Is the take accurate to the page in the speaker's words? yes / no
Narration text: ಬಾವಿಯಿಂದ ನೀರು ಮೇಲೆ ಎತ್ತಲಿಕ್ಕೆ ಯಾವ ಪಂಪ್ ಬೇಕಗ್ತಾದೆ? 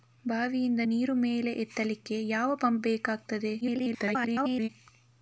no